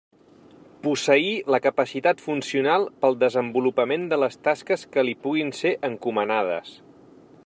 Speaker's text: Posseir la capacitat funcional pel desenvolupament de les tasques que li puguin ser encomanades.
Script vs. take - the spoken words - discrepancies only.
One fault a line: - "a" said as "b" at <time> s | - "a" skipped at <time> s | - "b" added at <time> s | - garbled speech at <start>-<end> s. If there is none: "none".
none